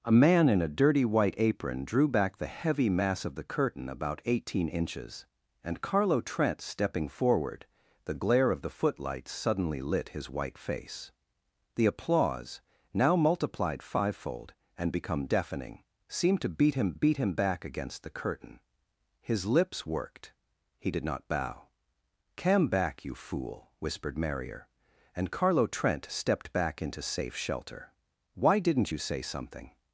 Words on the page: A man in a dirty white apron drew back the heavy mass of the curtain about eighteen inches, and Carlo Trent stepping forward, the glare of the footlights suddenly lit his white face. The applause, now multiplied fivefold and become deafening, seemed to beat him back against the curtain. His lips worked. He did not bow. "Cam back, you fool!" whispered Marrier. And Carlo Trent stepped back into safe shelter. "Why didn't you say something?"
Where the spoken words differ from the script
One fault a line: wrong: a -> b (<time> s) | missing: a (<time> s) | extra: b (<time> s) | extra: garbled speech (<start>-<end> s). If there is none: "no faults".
extra: beat him (16.9 s)